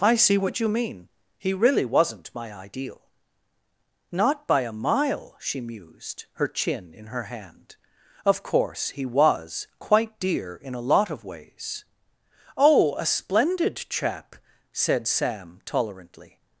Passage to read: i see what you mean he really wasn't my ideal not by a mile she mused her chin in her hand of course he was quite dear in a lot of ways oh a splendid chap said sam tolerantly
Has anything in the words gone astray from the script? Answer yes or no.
no